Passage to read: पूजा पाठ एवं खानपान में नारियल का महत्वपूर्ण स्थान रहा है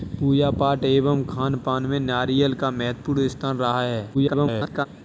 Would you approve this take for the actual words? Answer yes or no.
no